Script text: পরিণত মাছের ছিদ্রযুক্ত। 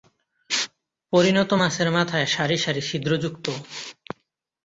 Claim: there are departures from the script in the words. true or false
true